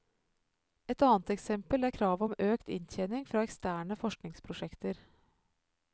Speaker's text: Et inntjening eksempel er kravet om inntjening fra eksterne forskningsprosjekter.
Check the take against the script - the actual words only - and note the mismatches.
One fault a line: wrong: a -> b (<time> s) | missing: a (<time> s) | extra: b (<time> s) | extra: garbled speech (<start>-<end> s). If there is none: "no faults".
wrong: inntjening -> annet (1.1 s)
extra: økt (2.5 s)